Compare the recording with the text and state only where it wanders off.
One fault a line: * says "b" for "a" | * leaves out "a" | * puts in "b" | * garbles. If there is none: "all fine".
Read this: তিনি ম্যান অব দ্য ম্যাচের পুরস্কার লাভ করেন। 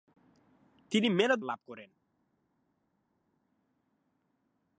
* leaves out "দ্য ম্যাচের পুরস্কার"